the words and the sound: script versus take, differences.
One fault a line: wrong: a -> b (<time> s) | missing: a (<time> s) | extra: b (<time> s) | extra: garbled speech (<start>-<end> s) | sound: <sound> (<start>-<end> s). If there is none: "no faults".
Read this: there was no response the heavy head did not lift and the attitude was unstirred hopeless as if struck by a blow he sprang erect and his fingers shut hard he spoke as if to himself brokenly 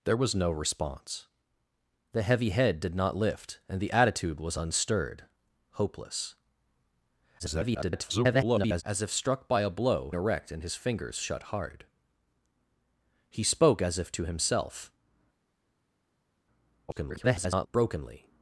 extra: garbled speech (7.4-8.8 s)
missing: he sprang (10.1 s)
extra: garbled speech (16.9-17.7 s)